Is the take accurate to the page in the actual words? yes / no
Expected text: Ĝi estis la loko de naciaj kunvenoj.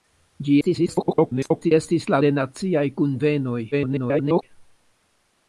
no